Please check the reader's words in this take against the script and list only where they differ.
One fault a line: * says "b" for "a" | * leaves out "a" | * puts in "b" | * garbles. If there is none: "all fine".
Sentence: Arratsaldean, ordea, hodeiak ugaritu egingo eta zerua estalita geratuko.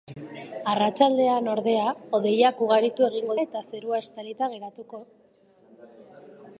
all fine